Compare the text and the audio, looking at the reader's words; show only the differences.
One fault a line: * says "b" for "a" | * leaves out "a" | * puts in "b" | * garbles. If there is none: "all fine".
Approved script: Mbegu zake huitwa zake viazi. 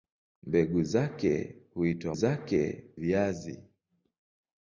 all fine